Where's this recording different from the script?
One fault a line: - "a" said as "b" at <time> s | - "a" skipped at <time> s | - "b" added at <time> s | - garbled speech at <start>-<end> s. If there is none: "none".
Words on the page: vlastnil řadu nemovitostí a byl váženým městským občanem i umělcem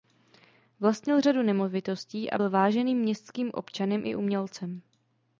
none